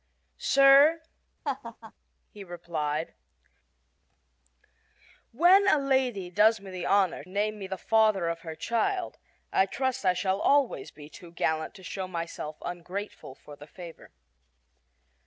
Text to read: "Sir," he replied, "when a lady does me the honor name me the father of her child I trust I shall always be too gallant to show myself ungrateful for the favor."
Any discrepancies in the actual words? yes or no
no